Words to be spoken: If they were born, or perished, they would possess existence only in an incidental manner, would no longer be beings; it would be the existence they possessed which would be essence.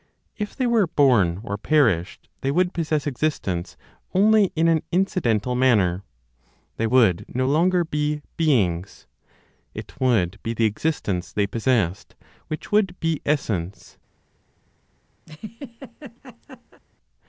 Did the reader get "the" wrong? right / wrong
right